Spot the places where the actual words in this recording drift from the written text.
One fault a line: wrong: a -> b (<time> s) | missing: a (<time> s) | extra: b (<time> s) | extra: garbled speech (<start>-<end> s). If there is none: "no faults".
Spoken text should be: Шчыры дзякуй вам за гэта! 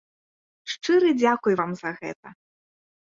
no faults